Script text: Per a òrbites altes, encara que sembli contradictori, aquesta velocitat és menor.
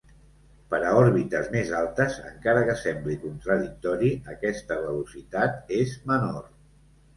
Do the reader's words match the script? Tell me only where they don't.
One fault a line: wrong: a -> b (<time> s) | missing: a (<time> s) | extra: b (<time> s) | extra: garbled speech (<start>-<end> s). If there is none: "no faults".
extra: més (1.6 s)